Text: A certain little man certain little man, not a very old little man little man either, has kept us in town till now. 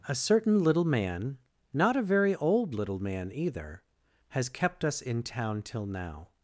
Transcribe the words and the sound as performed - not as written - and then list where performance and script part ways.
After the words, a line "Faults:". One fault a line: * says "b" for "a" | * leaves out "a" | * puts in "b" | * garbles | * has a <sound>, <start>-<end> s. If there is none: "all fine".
A certain little man, not a very old little man either, has kept us in town till now.
Faults:
* leaves out "certain little man"
* leaves out "little man"